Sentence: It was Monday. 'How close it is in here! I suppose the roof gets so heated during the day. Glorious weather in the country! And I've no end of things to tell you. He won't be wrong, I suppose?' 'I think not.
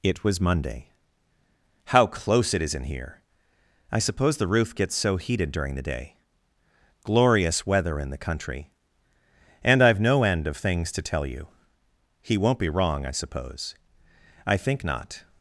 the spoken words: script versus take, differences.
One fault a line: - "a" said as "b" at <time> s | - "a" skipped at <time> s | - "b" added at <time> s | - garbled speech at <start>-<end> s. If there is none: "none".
none